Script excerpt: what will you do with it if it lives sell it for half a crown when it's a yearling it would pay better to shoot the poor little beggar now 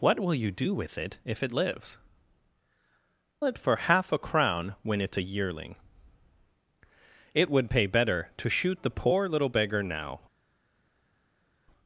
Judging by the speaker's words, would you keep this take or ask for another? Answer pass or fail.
fail